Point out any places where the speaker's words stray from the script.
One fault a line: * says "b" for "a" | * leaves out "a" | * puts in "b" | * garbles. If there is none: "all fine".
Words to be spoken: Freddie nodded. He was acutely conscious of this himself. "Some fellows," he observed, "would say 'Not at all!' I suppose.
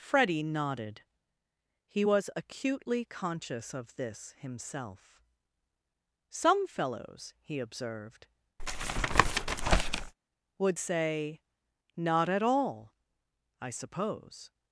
all fine